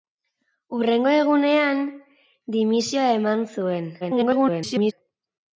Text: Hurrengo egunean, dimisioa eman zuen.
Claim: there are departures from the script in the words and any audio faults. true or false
true